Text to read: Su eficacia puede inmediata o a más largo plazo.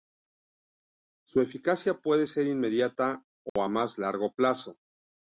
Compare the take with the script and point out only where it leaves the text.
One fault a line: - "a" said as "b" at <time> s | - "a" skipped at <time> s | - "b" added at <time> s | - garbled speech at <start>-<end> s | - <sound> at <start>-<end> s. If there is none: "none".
- "ser" added at 2.2 s
- dropout at 3.5-3.6 s